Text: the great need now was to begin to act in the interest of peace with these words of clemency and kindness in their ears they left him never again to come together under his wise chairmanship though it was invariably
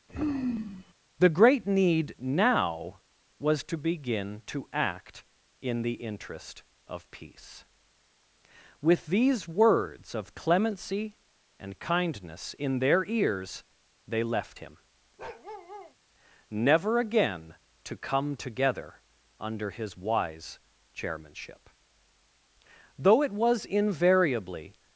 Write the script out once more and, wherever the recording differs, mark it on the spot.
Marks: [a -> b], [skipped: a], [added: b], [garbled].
the great need now was to begin to act in the interest of peace with these words of clemency and kindness in their ears they left him never again to come together under his wise chairmanship though it was invariably